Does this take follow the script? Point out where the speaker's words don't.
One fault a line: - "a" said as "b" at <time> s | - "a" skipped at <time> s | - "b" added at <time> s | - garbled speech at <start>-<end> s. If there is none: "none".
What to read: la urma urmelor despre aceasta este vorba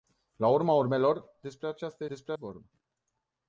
- "este" said as "despre" at 2.1 s